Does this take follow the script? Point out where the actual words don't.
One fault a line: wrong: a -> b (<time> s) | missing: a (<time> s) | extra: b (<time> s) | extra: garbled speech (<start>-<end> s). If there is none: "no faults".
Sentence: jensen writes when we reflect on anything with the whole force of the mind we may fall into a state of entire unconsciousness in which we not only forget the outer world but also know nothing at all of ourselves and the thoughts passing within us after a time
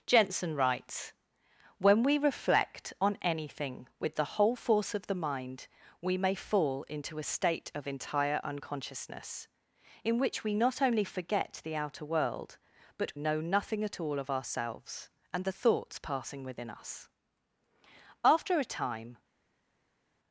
missing: also (13.1 s)